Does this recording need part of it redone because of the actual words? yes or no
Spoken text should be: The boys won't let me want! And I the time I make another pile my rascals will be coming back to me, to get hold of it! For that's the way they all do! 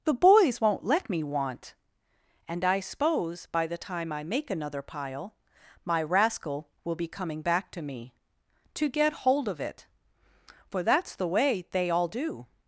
yes